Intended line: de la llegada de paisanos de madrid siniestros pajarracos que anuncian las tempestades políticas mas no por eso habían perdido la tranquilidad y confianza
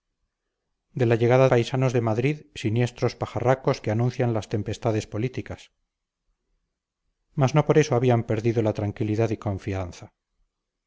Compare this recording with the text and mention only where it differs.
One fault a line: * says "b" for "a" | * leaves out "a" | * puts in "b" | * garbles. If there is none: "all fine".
* leaves out "de"